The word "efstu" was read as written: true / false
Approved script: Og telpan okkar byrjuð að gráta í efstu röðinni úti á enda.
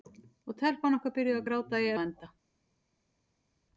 false